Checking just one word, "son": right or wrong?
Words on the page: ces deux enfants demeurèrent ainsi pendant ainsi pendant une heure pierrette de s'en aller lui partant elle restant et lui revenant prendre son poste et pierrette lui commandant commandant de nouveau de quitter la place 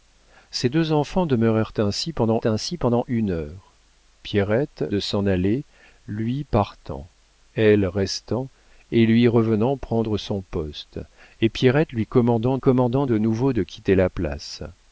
right